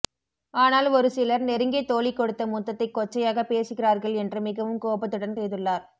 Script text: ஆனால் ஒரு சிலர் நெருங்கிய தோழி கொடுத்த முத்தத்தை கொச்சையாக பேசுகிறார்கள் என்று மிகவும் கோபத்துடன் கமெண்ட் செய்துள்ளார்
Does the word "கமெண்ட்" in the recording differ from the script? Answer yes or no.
yes